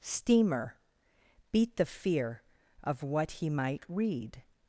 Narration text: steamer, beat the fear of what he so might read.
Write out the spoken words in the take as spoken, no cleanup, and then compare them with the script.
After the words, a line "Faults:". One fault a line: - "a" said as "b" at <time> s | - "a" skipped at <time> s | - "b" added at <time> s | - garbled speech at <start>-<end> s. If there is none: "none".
steamer, beat the fear of what he might read.
Faults:
- "so" skipped at 3.5 s